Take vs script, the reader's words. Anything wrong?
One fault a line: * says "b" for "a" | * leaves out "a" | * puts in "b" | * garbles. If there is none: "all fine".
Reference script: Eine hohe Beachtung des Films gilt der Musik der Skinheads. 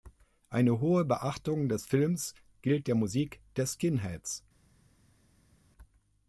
all fine